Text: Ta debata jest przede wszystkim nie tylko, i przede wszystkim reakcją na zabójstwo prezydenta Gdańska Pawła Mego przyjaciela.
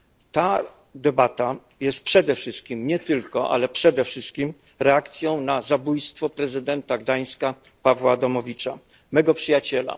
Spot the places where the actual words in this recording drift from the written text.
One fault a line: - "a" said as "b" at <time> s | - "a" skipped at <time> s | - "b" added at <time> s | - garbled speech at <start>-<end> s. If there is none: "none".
- "i" said as "ale" at 3.5 s
- "Adamowicza" added at 8.1 s